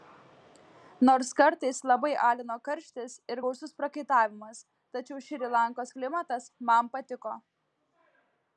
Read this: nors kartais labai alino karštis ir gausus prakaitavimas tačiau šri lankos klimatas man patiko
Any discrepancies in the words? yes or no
no